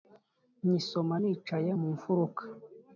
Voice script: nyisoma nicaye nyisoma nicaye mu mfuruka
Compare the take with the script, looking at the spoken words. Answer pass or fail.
fail